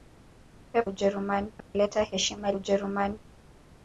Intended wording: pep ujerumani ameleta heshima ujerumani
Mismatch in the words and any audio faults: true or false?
true